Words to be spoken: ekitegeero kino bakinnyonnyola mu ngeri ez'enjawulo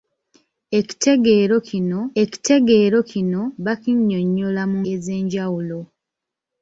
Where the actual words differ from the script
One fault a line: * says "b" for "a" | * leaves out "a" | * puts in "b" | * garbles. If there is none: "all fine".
* puts in "ekitegeero kino"
* leaves out "ngeri"